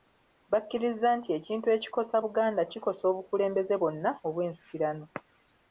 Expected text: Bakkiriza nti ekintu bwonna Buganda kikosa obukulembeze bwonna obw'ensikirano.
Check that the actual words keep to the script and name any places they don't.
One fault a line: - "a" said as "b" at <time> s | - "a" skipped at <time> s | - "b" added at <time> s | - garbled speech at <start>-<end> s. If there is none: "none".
- "bwonna" said as "ekikosa" at 1.8 s